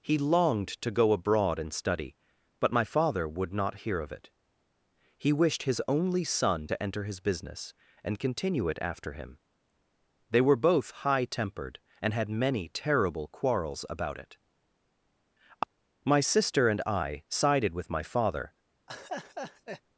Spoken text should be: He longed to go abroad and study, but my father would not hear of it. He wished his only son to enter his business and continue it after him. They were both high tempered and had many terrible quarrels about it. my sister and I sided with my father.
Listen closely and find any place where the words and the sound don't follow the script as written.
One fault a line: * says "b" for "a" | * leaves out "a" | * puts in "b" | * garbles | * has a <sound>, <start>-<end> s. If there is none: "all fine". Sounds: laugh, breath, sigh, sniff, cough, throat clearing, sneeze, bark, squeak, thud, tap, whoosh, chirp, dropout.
* has a laugh, 18.9-19.8 s